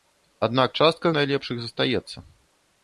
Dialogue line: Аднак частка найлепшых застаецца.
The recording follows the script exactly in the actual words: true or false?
true